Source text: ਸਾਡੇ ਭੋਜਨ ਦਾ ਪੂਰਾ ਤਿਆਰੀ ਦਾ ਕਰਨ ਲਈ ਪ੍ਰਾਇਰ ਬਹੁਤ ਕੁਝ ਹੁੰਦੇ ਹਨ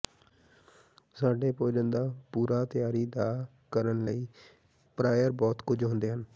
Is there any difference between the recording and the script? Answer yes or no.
no